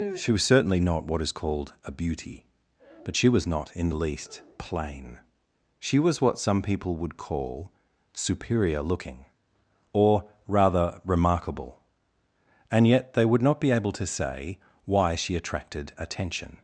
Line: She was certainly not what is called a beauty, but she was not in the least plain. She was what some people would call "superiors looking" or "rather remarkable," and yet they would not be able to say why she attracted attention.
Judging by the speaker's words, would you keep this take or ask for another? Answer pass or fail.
fail